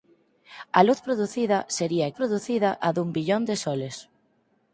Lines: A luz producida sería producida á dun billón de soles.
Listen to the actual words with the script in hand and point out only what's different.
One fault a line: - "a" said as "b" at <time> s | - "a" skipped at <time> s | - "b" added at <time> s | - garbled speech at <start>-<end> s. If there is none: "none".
none